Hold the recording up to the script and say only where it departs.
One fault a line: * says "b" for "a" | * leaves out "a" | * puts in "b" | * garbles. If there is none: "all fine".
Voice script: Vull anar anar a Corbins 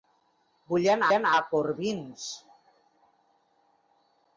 all fine